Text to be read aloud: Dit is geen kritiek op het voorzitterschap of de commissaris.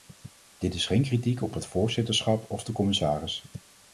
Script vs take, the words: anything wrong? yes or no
no